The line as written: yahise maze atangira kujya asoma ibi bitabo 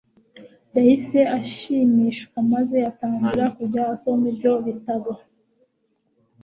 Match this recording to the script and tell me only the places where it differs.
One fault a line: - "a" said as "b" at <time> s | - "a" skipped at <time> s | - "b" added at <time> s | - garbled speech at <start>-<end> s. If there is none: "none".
- "ashimishwa" added at 1.4 s
- "ibi" said as "ibyo" at 4.3 s